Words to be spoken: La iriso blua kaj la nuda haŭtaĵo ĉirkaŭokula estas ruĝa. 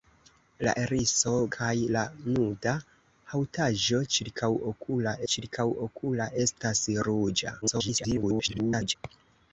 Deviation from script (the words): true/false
true